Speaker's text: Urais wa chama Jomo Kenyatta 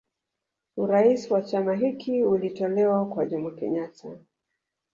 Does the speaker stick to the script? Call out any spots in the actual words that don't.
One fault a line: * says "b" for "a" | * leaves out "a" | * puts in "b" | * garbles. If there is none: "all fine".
* puts in "hiki ulitolewa kwa"